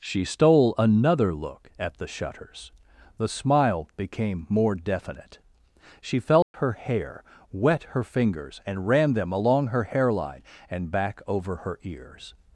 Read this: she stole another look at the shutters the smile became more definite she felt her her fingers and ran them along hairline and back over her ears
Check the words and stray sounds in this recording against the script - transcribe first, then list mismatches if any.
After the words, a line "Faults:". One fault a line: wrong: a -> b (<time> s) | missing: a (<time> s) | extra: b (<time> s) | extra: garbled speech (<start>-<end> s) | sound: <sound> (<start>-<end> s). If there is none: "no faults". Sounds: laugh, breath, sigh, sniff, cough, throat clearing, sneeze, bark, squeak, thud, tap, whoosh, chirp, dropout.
she stole another look at the shutters the smile became more definite she felt her hair wet her fingers and ran them along her hairline and back over her ears
Faults:
sound: dropout (6.4-6.5 s)
extra: hair wet (6.7 s)
extra: her (9.7 s)